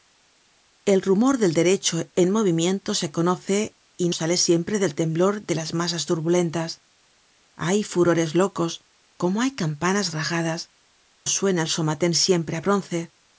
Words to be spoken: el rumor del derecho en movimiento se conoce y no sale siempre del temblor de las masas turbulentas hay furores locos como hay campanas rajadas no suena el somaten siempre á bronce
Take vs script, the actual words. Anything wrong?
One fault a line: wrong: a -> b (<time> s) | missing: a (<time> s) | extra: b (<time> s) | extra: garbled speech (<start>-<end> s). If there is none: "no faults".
missing: no (4.1 s)
missing: no (10.7 s)